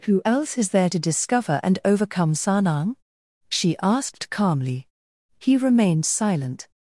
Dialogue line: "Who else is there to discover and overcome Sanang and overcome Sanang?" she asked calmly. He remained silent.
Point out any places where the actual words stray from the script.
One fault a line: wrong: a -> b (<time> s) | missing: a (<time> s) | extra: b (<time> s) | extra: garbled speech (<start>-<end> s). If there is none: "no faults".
missing: and overcome Sanang (3.0 s)